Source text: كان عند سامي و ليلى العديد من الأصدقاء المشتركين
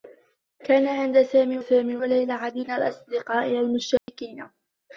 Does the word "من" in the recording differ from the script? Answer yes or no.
yes